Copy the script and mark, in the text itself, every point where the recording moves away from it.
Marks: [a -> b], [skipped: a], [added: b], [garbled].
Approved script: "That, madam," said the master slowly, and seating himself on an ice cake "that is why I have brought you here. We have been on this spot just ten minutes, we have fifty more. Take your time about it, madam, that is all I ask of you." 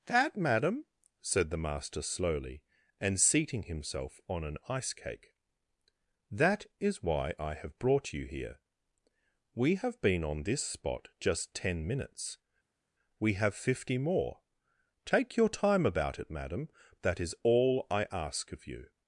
"That, madam," said the master slowly, and seating himself on an ice cake "that is why I have brought you here. We have been on this spot just ten minutes, we have fifty more. Take your time about it, madam, that is all I ask of you."